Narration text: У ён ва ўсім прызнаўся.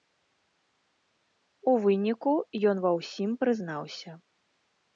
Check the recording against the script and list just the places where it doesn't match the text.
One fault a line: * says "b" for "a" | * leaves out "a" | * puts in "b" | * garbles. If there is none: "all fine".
* puts in "выніку"